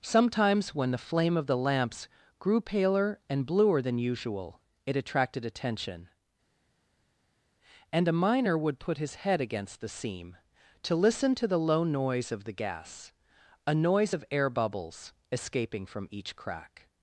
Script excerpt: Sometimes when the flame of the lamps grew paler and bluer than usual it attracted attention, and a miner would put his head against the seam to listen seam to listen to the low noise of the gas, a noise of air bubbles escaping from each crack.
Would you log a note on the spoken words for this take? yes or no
yes